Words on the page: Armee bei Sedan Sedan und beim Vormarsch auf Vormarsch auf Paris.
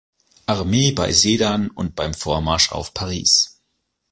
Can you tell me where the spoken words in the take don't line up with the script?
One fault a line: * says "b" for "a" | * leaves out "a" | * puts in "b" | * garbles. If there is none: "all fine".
* leaves out "Sedan"
* leaves out "Vormarsch auf"